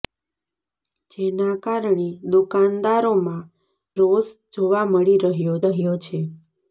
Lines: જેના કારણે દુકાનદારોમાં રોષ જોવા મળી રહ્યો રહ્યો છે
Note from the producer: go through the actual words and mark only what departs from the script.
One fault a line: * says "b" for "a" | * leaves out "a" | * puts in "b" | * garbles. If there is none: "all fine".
all fine